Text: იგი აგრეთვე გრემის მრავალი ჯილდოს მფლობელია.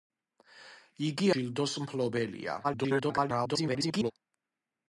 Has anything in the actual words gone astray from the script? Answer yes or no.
yes